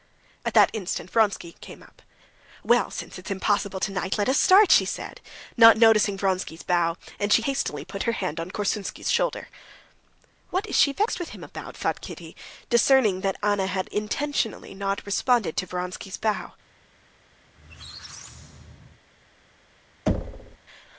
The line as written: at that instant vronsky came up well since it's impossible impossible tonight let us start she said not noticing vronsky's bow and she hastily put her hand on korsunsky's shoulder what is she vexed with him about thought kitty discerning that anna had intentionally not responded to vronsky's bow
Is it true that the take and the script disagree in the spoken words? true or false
true